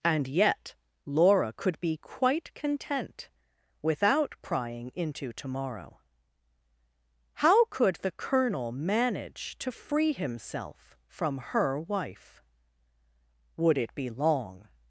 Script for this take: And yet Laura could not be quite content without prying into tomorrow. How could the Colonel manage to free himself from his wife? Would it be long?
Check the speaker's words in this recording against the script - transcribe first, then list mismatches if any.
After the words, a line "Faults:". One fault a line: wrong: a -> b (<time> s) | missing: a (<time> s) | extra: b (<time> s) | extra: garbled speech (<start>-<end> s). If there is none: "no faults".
And yet Laura could be quite content without prying into tomorrow. How could the Colonel manage to free himself from her wife? Would it be long?
Faults:
missing: not (1.8 s)
wrong: his -> her (11.4 s)